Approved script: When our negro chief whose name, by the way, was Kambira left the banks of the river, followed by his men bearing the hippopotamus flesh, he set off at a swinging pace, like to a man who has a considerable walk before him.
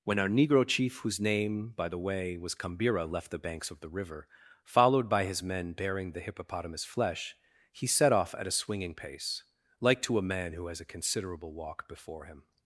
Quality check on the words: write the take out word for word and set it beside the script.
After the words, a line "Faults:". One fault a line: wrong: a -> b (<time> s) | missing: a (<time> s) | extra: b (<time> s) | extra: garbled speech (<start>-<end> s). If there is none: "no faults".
When our negro chief whose name, by the way, was Kambira left the banks of the river, followed by his men bearing the hippopotamus flesh, he set off at a swinging pace, like to a man who has a considerable walk before him.
Faults:
no faults